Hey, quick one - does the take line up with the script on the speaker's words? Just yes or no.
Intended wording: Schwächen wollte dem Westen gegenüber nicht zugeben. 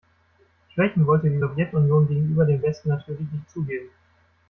no